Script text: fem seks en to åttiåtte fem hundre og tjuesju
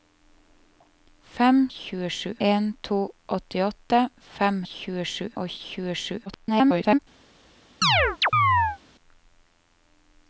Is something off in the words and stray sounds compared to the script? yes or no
yes